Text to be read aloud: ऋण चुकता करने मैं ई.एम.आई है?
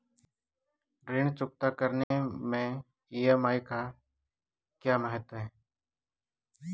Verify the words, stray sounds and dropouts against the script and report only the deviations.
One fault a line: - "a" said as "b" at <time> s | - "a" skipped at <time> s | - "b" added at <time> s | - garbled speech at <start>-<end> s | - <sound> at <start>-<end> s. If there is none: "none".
- dropout at 2.0-2.1 s
- "का क्या महत्व" added at 3.6 s